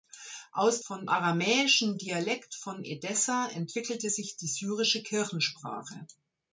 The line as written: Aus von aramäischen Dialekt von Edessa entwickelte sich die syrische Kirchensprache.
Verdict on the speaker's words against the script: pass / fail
pass